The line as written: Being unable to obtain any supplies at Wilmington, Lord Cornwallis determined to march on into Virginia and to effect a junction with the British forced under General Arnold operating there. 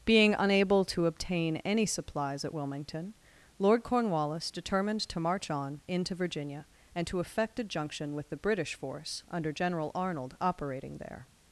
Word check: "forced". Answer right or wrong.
wrong